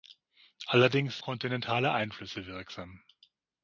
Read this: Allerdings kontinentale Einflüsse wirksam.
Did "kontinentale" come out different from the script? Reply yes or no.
no